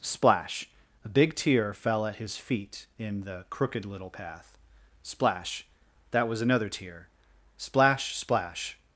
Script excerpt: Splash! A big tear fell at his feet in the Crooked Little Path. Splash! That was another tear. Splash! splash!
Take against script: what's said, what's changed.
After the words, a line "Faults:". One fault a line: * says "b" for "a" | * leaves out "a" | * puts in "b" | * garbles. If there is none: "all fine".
Splash! A big tear fell at his feet in the Crooked Little Path. Splash! That was another tear. Splash! splash!
Faults:
all fine